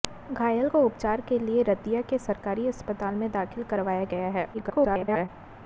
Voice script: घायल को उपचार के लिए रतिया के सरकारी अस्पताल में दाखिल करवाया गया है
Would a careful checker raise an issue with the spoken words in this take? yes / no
yes